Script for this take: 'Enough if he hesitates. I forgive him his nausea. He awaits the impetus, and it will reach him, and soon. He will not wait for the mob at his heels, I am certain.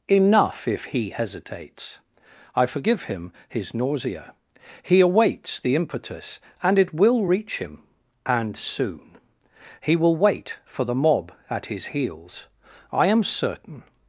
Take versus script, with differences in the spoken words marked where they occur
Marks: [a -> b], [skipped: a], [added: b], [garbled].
'Enough if he hesitates. I forgive him his nausea. He awaits the impetus, and it will reach him, and soon. He will [skipped: not] wait for the mob at his heels, I am certain.